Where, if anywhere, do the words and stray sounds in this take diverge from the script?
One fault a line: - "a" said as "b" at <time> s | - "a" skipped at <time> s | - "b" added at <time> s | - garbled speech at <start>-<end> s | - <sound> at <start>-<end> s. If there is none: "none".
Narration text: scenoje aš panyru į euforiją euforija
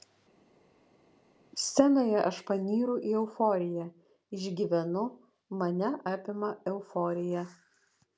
- "išgyvenu mane apima" added at 4.4 s